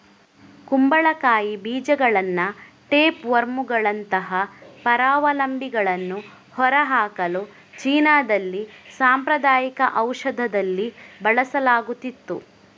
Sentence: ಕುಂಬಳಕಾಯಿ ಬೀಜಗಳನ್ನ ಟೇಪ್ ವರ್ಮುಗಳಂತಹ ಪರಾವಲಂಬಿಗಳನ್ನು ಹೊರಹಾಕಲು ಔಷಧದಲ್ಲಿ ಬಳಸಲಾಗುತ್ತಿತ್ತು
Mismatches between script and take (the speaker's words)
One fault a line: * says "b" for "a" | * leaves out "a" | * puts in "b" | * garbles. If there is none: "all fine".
* puts in "ಚೀನಾದಲ್ಲಿ ಸಾಂಪ್ರದಾಯಿಕ"